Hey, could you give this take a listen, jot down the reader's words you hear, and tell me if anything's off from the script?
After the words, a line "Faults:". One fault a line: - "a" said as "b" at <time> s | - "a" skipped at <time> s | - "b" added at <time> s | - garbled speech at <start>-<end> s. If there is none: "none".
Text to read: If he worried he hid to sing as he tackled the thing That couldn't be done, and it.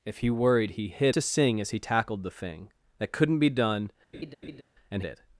If he worried he hid to sing as he tackled the thing That couldn't be done, and it.
Faults:
none